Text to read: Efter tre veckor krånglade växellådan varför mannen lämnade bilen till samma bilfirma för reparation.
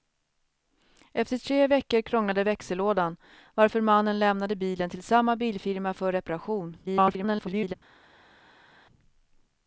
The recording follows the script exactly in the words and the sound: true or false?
false